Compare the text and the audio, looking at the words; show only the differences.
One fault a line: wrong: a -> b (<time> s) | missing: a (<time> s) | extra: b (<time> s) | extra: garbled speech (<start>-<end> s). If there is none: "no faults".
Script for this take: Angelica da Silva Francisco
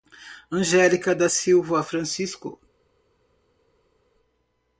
no faults